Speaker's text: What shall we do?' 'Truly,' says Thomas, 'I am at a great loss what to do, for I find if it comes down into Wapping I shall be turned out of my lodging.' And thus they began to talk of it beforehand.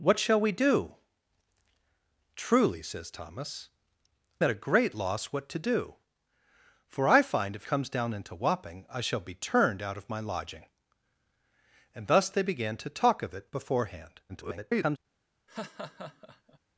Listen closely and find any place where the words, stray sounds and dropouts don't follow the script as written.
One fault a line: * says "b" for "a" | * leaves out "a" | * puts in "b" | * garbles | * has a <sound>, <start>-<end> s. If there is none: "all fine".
* leaves out "I am"
* leaves out "it"
* garbles
* has a laugh, 15.5-16.6 s